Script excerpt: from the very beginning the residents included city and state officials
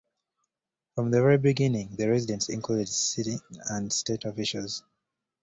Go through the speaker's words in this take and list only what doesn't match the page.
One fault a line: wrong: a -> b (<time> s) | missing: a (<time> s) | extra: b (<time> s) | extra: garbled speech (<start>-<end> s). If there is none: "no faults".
no faults